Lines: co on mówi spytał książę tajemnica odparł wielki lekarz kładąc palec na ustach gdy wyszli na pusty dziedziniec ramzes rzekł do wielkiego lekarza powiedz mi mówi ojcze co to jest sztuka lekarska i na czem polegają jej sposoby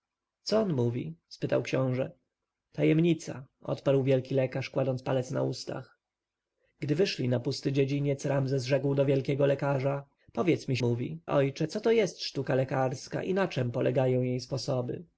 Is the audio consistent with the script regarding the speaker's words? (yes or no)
yes